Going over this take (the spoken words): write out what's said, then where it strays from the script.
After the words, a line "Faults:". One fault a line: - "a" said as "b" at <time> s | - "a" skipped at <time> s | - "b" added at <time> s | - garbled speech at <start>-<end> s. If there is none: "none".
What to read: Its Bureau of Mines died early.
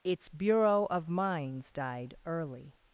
Its Bureau of Mines died early.
Faults:
none